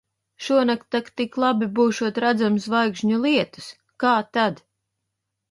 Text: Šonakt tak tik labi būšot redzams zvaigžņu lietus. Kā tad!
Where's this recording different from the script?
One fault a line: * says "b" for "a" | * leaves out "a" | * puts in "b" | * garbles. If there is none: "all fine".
all fine